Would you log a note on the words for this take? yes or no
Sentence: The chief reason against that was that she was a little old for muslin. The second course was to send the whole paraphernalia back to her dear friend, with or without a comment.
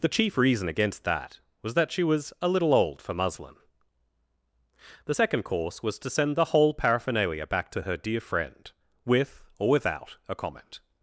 no